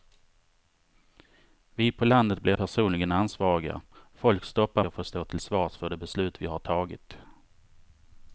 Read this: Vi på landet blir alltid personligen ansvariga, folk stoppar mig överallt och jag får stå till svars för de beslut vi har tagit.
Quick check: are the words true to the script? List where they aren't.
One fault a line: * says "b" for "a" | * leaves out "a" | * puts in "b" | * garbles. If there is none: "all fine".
* leaves out "alltid"
* leaves out "mig överallt och"